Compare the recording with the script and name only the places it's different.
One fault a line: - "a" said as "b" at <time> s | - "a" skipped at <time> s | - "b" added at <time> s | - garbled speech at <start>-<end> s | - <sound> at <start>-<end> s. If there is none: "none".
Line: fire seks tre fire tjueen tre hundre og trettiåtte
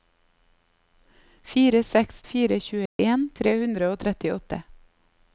- "tre" skipped at 2.2 s
- dropout at 2.9-3.0 s